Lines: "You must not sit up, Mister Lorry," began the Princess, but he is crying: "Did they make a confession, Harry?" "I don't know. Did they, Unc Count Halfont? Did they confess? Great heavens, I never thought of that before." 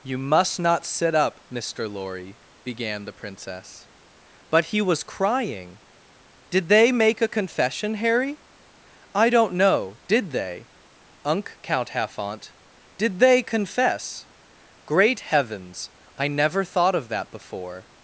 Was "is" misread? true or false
true